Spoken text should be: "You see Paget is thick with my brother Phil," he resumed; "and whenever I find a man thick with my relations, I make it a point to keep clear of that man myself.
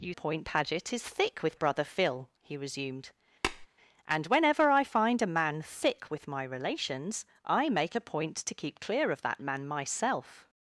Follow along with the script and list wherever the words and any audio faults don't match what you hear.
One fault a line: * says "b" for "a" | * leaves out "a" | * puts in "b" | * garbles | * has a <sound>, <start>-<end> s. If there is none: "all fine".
* says "point" for "see"
* leaves out "my"
* has a tap, 3.4-3.7 s
* leaves out "it"